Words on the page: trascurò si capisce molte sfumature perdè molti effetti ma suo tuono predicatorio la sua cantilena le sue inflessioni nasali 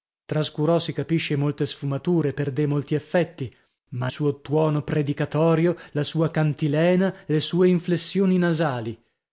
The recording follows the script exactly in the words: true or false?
true